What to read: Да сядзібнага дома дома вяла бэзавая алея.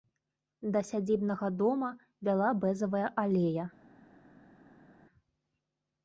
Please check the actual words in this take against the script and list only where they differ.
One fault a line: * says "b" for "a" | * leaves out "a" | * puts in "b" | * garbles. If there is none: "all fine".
* leaves out "дома"